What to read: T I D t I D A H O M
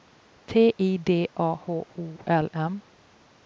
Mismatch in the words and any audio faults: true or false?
true